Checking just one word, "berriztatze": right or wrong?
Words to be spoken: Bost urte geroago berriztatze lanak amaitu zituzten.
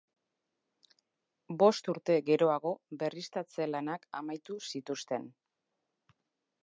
right